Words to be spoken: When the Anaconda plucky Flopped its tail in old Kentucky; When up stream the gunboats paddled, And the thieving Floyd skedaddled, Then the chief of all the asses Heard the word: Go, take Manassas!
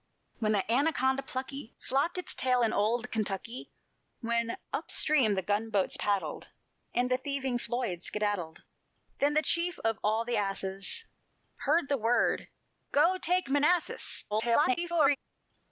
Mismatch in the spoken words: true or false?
true